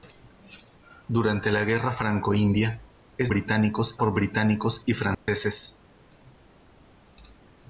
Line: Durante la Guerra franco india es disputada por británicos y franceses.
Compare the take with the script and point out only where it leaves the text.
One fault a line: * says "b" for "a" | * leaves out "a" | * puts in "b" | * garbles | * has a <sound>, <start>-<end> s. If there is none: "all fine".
* says "británicos" for "disputada"
* has a dropout, 5.1-5.3 s